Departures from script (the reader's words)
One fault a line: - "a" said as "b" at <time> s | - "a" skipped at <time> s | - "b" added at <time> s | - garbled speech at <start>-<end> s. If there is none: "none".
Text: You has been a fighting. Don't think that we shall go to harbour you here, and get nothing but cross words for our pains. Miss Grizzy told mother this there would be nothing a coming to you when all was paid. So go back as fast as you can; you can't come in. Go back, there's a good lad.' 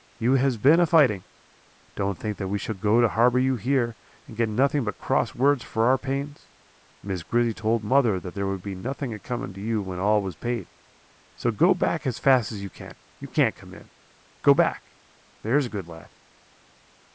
- "this" said as "that" at 8.2 s